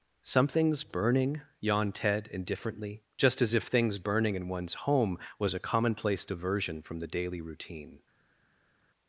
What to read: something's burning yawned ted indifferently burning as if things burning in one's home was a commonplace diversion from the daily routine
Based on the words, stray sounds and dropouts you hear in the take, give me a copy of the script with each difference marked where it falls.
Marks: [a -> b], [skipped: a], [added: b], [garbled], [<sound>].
something's burning yawned ted indifferently [burning -> just] as if things burning in one's home was a commonplace diversion from the daily routine